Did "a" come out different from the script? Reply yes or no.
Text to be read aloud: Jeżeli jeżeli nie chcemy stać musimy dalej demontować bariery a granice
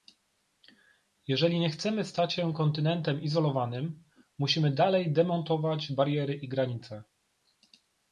yes